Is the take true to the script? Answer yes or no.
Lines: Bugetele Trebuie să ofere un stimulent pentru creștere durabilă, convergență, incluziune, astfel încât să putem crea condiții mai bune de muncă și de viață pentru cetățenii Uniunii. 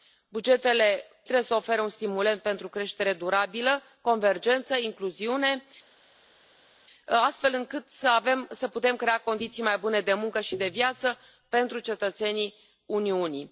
yes